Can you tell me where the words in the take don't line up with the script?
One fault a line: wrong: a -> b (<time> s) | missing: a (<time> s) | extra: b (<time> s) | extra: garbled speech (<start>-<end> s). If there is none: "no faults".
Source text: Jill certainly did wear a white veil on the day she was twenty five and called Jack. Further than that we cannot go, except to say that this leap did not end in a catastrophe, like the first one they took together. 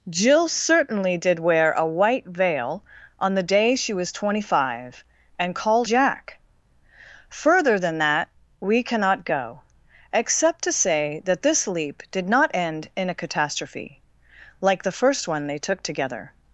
no faults